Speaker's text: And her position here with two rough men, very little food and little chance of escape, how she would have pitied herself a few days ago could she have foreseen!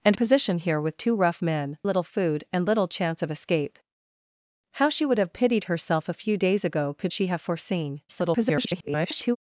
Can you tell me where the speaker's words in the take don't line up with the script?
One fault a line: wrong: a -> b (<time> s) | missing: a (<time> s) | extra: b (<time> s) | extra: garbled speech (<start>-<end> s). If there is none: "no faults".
missing: her (0.1 s)
missing: very (1.8 s)
extra: garbled speech (8.1-9.4 s)